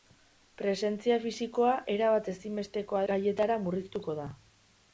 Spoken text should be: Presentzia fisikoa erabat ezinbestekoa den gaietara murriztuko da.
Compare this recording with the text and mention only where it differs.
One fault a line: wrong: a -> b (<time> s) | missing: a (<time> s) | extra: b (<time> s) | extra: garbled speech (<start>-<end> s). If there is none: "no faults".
missing: den (3.0 s)